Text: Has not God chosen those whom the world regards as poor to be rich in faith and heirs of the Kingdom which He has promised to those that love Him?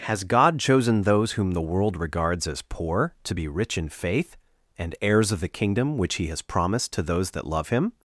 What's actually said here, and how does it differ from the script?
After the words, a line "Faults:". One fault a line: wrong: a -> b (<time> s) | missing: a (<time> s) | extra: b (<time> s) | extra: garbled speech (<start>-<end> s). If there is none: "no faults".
Has God chosen those whom the world regards as poor to be rich in faith and heirs of the Kingdom which He has promised to those that love Him?
Faults:
missing: not (0.2 s)